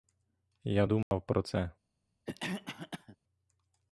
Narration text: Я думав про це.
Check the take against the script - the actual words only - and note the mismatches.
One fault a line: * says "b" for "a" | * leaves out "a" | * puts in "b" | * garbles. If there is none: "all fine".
all fine